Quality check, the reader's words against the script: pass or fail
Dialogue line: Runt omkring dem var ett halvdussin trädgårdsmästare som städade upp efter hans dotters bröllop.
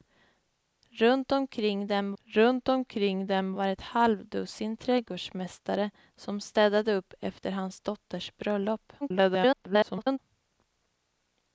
fail